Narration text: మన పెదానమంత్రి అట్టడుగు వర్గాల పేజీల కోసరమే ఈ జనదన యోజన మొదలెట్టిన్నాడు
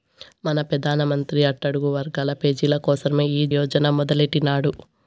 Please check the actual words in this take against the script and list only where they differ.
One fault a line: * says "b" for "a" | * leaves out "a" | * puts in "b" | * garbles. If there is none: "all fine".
* leaves out "జనదన"